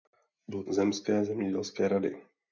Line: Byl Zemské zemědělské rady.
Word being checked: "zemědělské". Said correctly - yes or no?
yes